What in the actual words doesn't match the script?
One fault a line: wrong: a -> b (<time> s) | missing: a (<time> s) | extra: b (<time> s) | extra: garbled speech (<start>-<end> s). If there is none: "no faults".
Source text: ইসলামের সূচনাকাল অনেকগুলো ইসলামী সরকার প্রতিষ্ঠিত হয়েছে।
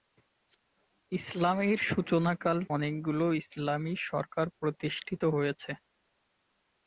no faults